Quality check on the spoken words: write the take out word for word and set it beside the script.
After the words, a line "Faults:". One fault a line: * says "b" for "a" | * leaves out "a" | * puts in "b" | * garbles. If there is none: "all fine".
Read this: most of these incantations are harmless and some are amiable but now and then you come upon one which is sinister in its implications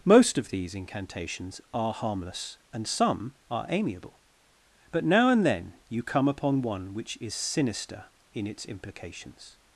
most of these incantations are harmless and some are amiable but now and then you come upon one which is sinister in its implications
Faults:
all fine